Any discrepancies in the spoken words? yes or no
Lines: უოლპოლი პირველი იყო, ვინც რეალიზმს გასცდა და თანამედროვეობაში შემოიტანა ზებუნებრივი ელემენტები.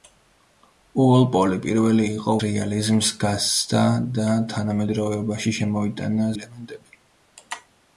yes